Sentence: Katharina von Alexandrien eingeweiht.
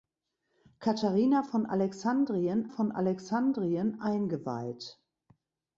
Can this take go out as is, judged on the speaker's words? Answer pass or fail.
fail